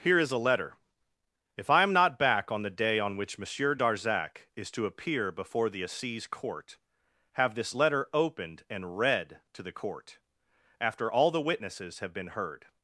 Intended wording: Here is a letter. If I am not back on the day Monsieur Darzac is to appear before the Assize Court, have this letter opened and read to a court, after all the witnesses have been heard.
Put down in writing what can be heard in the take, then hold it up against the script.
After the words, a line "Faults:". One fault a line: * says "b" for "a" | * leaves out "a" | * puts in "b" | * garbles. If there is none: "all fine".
Here is a letter. If I am not back on the day on which Monsieur Darzac is to appear before the Assize Court, have this letter opened and read to the court, after all the witnesses have been heard.
Faults:
* puts in "on which"
* says "the" for "a"